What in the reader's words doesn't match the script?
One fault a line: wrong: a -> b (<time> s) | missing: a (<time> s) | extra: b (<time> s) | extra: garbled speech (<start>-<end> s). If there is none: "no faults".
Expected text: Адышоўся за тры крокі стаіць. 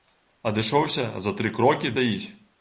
no faults